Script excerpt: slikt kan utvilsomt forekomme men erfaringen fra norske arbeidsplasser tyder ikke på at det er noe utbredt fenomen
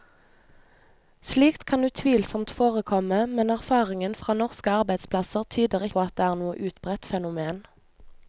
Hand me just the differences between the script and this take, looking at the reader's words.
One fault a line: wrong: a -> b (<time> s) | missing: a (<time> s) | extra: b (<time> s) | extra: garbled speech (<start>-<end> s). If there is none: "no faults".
missing: ikke (5.8 s)